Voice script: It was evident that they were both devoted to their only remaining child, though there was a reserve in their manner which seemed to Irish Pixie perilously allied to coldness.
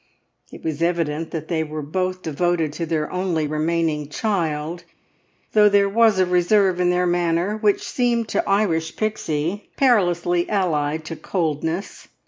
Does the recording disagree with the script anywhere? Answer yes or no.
no